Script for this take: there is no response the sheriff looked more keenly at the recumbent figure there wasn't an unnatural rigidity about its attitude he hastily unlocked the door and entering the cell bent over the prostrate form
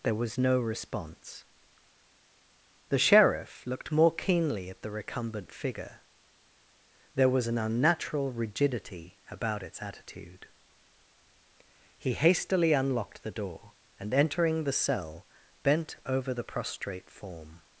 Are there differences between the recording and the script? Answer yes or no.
yes